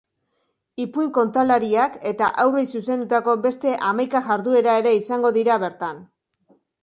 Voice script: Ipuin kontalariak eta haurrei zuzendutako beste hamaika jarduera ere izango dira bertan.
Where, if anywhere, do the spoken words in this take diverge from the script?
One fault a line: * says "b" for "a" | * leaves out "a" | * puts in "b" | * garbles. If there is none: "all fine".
all fine